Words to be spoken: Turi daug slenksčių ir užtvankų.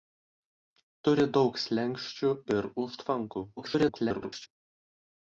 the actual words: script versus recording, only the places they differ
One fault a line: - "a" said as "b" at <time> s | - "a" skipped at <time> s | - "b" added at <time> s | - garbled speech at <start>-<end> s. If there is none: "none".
- garbled speech at 3.6-4.5 s